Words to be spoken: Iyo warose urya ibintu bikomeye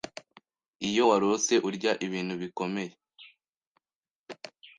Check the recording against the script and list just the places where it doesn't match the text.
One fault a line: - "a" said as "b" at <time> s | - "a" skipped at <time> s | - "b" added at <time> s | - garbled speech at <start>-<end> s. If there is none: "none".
none